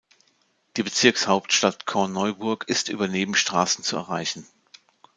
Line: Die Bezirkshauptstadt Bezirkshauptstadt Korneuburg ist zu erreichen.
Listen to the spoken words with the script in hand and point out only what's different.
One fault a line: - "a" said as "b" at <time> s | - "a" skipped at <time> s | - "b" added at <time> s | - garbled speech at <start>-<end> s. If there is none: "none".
- "Bezirkshauptstadt" skipped at 1.9 s
- "über Nebenstraßen" added at 2.9 s